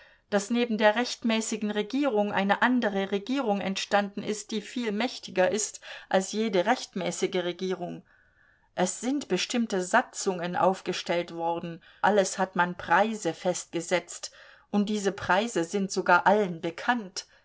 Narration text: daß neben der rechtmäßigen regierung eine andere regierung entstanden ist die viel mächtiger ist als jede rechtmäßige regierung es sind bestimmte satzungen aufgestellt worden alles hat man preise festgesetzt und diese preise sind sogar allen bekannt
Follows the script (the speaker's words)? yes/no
yes